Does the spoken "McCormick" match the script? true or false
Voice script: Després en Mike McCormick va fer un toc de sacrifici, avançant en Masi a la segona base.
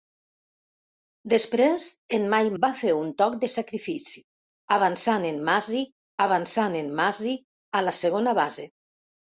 false